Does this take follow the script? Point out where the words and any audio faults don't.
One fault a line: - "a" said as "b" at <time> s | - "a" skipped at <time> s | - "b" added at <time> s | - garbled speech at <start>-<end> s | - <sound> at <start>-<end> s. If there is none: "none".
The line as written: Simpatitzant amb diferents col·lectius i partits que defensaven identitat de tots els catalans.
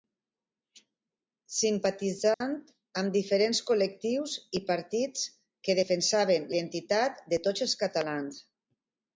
- dropout at 2.3-2.4 s